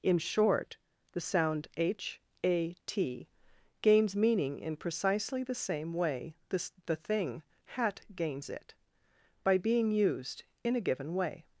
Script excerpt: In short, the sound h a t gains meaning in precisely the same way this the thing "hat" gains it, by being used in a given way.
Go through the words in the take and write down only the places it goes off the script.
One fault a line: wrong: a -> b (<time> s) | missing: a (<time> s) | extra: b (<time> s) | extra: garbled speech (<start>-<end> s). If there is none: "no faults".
no faults